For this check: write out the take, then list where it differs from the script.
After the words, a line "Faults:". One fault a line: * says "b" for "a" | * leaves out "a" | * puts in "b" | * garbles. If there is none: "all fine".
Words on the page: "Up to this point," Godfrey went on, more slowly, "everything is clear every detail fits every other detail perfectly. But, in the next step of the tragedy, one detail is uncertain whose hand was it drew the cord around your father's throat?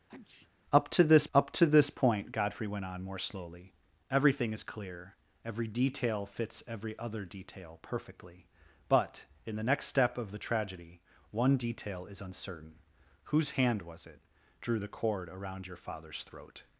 "Up to this up to this point," Godfrey went on, more slowly, "everything is clear every detail fits every other detail perfectly. But, in the next step of the tragedy, one detail is uncertain whose hand was it drew the cord around your father's throat?
Faults:
* puts in "up to this"